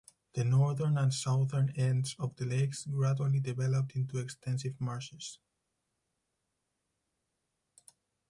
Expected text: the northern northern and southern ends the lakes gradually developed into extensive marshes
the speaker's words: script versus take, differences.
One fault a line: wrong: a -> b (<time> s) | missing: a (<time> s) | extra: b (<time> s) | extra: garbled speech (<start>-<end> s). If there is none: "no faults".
missing: northern (1.0 s)
extra: of (2.2 s)